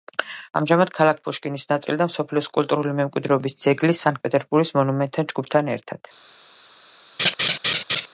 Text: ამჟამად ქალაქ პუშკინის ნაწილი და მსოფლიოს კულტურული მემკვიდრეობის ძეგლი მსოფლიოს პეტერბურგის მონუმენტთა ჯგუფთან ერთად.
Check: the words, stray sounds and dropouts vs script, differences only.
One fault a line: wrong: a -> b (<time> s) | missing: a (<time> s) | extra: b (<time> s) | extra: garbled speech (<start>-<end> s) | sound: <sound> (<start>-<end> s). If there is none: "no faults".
wrong: მსოფლიოს -> სანქტ (4.0 s)
sound: laugh (7.2-8.1 s)